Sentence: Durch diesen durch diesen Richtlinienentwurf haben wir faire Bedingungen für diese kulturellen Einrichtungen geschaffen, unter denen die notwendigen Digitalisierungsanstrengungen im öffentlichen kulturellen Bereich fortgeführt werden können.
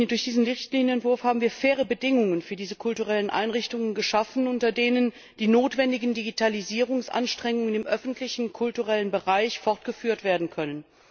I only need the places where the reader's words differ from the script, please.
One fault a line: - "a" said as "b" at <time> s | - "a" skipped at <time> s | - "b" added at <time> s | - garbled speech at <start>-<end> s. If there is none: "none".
- "durch diesen" skipped at 0.5 s